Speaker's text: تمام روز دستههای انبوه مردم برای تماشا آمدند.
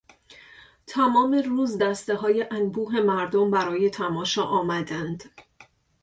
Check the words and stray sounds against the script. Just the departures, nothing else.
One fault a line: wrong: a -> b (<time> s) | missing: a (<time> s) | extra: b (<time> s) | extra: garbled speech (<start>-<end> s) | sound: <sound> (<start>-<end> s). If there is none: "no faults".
no faults